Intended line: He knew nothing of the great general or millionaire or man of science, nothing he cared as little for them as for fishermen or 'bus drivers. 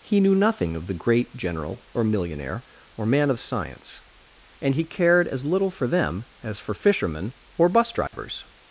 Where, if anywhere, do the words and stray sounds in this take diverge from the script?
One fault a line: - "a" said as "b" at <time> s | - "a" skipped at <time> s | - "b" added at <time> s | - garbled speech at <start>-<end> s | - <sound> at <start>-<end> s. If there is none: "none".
- "nothing" said as "and" at 4.6 s
- dropout at 8.1-8.1 s